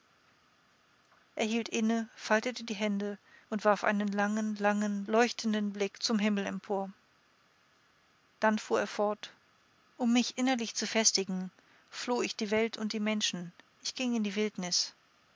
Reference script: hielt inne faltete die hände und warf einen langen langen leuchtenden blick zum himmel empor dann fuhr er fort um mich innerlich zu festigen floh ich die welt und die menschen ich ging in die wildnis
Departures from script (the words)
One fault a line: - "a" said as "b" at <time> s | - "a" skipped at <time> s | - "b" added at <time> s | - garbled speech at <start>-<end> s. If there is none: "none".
none